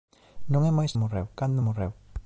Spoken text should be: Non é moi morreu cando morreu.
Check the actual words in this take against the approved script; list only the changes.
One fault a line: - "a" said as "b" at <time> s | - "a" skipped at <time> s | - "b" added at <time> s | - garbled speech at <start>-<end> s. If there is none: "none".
none